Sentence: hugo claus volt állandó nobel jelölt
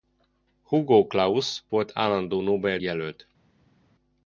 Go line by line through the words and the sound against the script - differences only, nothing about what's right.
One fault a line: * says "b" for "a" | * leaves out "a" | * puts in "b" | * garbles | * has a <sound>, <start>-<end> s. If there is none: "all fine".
all fine